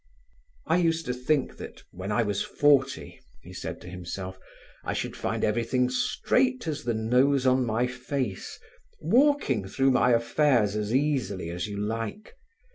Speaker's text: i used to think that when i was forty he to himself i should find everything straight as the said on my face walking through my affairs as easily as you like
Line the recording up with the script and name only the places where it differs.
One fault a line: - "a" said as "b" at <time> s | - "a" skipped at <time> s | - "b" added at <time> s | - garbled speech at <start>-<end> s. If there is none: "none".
- "said" added at 3.5 s
- "said" said as "nose" at 6.9 s